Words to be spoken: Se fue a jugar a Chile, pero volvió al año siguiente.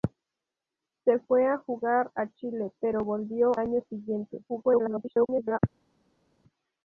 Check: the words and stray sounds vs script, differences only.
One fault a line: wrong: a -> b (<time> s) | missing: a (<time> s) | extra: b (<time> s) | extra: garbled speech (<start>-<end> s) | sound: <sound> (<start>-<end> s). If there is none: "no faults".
missing: al (3.5 s)
extra: garbled speech (4.5-5.6 s)